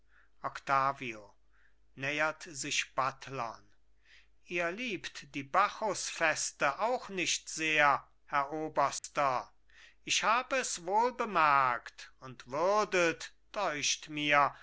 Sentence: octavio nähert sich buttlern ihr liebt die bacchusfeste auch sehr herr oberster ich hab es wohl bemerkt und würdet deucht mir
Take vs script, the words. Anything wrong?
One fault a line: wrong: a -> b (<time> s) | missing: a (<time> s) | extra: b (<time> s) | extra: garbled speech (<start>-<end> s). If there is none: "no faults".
extra: nicht (7.1 s)